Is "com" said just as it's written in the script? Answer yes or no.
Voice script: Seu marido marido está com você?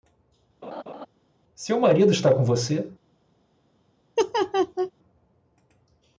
yes